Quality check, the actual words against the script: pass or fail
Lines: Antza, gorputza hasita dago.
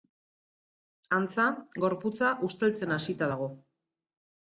fail